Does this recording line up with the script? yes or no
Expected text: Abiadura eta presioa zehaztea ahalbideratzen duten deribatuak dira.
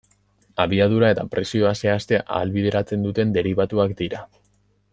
yes